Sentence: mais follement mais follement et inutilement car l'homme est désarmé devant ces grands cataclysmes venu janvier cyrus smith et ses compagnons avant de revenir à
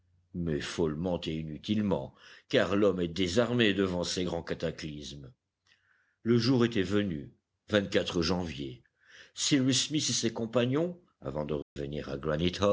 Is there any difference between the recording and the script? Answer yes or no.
yes